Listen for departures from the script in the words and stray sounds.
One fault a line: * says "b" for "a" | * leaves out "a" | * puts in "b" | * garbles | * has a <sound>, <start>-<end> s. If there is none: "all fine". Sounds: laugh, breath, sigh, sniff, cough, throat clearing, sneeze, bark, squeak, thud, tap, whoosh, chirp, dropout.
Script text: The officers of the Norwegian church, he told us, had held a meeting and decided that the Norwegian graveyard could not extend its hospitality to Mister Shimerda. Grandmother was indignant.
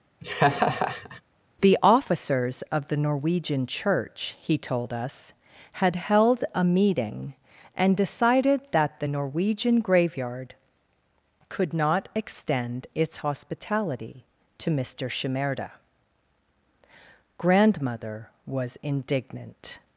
* has a laugh, 0.2-1.2 s